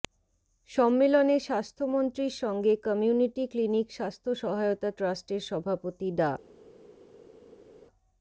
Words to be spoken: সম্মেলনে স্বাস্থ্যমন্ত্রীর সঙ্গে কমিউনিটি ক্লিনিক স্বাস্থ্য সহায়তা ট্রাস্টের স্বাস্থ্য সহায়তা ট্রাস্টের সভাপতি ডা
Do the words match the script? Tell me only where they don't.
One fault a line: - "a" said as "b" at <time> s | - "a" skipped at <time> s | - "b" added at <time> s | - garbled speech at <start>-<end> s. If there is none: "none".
- "স্বাস্থ্য সহায়তা ট্রাস্টের" skipped at 5.4 s